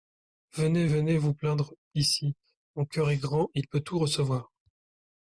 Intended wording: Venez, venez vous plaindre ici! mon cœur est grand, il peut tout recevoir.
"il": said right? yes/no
yes